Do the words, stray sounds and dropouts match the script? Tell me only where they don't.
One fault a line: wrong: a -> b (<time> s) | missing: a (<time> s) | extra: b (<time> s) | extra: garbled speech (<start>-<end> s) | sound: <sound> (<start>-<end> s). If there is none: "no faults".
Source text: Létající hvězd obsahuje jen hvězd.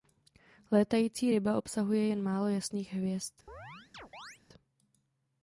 wrong: hvězd -> ryba (1.3 s)
extra: málo jasných (2.2 s)
sound: chirp (3.5-4.4 s)